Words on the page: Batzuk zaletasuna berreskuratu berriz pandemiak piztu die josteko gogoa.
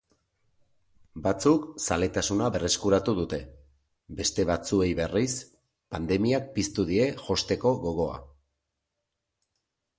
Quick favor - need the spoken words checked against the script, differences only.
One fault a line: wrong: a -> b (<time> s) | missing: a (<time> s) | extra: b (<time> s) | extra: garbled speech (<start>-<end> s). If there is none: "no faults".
extra: dute beste batzuei (3.2 s)